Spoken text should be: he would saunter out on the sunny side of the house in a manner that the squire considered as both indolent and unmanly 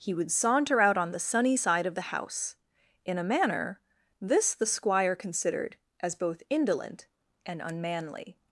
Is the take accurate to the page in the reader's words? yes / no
no